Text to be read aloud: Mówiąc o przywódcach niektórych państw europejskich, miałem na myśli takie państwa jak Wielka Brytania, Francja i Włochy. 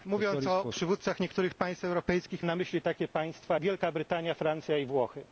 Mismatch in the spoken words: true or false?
true